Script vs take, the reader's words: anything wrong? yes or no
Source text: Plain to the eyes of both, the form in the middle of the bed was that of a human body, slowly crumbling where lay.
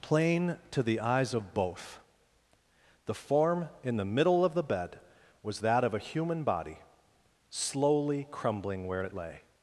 yes